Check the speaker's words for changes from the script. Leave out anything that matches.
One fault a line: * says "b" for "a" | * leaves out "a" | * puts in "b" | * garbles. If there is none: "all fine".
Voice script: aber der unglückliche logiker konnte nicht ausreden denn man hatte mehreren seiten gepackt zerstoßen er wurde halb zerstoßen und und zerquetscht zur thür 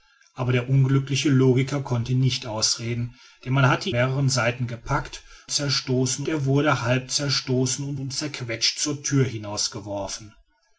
all fine